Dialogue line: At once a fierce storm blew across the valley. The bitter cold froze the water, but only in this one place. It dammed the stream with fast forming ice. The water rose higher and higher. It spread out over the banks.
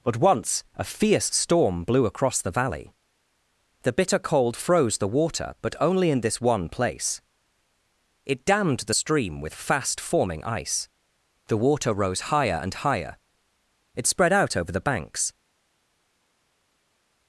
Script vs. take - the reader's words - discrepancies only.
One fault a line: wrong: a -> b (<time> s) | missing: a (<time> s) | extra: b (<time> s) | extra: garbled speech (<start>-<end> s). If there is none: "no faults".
wrong: At -> But (0.0 s)